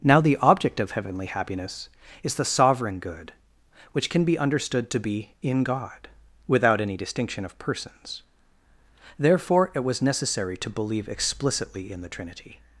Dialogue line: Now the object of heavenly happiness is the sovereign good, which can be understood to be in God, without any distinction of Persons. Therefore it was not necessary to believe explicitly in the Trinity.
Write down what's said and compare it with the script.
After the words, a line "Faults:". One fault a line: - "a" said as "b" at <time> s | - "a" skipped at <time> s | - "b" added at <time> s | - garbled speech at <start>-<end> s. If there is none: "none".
Now the object of heavenly happiness is the sovereign good, which can be understood to be in God, without any distinction of Persons. Therefore it was necessary to believe explicitly in the Trinity.
Faults:
- "not" skipped at 10.0 s